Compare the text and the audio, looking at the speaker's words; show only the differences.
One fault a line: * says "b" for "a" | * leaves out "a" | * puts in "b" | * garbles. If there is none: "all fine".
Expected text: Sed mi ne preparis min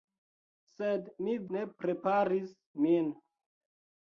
all fine